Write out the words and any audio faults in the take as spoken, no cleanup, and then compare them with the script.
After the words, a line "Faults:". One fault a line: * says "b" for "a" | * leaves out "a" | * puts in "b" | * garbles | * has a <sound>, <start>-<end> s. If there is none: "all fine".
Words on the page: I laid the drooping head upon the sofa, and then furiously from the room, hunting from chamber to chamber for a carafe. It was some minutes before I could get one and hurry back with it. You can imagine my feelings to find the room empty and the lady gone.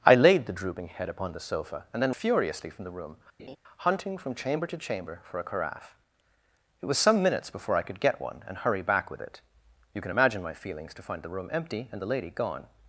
I laid the drooping head upon the sofa, and then furiously from the room, hunting from chamber to chamber for a carafe. It was some minutes before I could get one and hurry back with it. You can imagine my feelings to find the room empty and the lady gone.
Faults:
* has a laugh, 3.4-3.6 s